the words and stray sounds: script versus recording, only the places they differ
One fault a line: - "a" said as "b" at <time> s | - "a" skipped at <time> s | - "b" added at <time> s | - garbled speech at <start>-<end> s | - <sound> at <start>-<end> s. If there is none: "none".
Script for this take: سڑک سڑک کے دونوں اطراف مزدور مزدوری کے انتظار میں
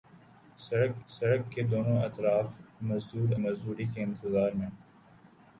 none